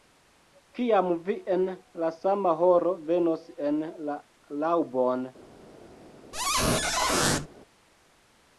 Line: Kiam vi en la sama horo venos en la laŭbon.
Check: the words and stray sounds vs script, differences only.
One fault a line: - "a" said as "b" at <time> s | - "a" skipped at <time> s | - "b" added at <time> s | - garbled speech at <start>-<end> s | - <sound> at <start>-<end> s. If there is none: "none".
- squeak at 6.3-7.5 s